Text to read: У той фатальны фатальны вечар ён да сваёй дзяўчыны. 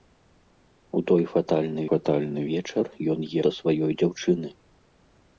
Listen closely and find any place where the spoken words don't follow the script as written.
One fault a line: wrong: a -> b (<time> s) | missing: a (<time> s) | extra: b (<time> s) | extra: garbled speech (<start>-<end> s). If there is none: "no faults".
no faults